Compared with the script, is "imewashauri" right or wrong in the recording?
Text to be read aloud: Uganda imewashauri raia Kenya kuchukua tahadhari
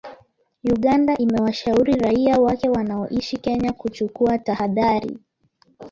right